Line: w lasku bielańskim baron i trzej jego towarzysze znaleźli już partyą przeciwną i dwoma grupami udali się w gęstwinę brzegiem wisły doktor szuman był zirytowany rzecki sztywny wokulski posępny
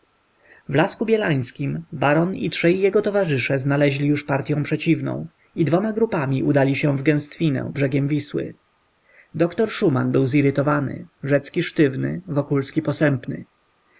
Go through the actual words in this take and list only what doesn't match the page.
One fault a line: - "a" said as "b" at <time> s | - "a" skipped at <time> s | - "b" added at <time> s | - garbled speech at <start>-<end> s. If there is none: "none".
none